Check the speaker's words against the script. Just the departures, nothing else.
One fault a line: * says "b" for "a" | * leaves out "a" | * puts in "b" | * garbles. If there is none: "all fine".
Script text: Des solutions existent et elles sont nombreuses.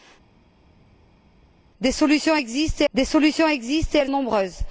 * puts in "des solutions existent"
* leaves out "sont"